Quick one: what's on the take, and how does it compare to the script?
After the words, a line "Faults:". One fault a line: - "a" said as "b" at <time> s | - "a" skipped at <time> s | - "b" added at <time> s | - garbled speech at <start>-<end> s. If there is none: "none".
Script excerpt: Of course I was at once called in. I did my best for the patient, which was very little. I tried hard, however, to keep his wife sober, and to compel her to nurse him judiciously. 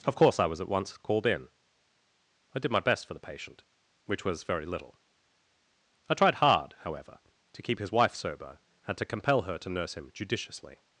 Of course I was at once called in. I did my best for the patient, which was very little. I tried hard, however, to keep his wife sober, and to compel her to nurse him judiciously.
Faults:
none